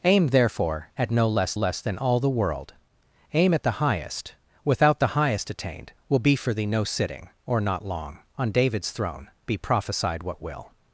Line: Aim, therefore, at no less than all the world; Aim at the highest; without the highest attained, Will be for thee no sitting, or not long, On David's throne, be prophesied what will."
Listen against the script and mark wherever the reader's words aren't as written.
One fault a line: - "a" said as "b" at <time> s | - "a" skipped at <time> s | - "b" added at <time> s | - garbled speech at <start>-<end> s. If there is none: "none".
- "less" added at 1.5 s